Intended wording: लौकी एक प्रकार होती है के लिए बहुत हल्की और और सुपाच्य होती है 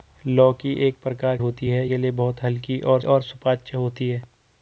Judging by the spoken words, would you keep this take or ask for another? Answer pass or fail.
pass